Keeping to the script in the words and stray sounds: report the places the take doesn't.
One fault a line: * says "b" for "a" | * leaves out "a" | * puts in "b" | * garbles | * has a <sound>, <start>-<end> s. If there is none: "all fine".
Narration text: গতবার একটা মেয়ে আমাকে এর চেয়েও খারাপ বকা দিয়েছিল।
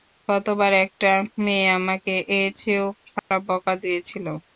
* has a dropout, 3.2-3.3 s